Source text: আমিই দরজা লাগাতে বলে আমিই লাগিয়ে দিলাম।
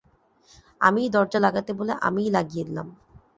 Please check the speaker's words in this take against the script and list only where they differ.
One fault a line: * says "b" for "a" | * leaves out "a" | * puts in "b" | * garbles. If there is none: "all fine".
all fine